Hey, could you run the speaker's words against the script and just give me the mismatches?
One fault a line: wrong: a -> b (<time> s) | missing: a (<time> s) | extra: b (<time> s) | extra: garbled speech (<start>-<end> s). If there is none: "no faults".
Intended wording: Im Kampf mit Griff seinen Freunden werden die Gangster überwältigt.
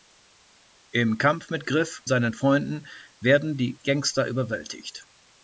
no faults